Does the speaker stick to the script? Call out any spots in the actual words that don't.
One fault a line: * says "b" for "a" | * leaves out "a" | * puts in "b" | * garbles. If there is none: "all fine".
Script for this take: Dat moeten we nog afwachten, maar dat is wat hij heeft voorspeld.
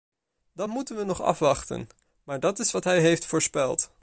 all fine